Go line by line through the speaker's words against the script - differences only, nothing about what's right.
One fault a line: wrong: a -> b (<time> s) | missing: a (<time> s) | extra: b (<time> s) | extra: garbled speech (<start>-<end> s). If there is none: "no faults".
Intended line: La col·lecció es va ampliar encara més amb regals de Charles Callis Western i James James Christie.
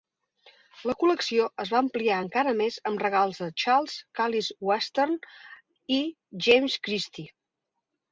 missing: James (6.8 s)